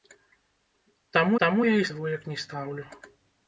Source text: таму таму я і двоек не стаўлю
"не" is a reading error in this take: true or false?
false